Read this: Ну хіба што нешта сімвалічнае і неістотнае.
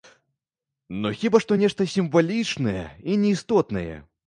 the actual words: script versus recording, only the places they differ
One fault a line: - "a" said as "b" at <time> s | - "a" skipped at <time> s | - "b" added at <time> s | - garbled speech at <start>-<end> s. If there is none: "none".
none